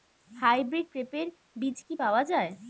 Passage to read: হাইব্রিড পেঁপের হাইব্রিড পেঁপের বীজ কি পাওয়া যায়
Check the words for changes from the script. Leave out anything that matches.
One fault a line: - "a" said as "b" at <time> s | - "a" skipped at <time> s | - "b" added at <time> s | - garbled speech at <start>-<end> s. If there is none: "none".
- "হাইব্রিড পেঁপের" skipped at 1.3 s